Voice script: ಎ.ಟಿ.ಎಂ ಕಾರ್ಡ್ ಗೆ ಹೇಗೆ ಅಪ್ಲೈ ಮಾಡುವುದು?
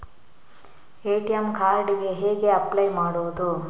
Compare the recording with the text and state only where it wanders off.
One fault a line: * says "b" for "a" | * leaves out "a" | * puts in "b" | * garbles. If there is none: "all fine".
all fine